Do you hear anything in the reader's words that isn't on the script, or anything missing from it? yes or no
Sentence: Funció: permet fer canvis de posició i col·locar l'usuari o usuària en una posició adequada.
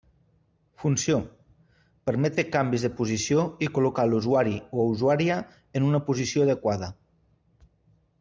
no